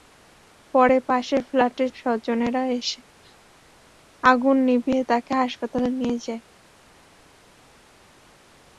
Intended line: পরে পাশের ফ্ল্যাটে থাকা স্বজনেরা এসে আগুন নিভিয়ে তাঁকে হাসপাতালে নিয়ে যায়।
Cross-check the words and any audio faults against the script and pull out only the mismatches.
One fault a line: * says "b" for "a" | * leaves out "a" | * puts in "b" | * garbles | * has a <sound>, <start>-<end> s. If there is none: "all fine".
* leaves out "থাকা"